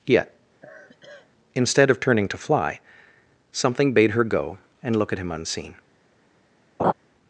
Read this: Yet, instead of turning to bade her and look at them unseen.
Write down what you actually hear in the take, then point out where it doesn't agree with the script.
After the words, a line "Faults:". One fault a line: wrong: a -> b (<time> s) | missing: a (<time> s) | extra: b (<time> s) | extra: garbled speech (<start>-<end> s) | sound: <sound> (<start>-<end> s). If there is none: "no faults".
Yet, instead of turning to fly, something bade her go and look at him unseen.
Faults:
sound: sigh (0.6-1.3 s)
extra: fly something (2.4 s)
extra: go (4.2 s)
wrong: them -> him (5.2 s)
sound: laugh (6.8-6.9 s)